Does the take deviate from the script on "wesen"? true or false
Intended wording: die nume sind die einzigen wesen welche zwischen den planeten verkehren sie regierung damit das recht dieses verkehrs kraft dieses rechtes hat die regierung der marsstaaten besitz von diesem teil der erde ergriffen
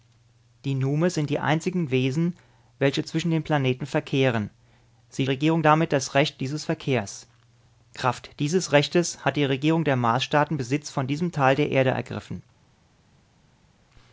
false